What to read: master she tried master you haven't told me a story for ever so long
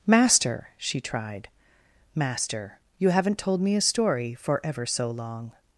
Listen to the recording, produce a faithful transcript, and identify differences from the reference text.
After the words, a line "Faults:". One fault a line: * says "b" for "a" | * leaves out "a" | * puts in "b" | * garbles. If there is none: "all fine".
master she tried master you haven't told me a story for ever so long
Faults:
all fine